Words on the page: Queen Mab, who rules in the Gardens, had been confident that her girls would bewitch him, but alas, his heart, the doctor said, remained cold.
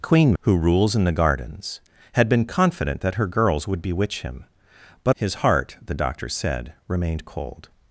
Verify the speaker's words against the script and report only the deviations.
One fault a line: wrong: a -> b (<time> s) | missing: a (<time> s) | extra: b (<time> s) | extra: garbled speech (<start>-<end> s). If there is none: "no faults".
missing: Mab (0.3 s)
missing: alas (5.2 s)